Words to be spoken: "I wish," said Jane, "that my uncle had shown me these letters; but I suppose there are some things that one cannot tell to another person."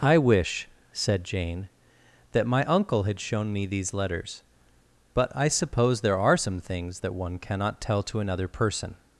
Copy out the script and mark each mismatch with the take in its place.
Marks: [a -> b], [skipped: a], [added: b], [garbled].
"I wish," said Jane, "that my uncle had shown me these letters; but I suppose there are some things that one cannot tell to another person."